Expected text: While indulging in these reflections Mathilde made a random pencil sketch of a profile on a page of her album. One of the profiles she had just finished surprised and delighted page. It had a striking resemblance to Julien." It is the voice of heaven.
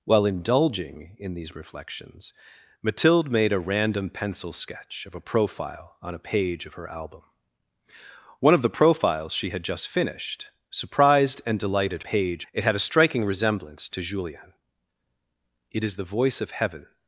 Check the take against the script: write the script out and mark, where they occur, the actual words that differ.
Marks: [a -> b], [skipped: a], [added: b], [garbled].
While indulging in these reflections Mathilde made a random pencil sketch of a profile on a page of her album. One of the profiles she had just finished surprised and delighted page. It had a striking resemblance to Julien." It is the voice of heaven.